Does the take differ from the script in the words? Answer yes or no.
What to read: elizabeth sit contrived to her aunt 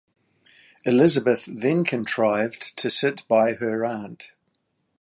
yes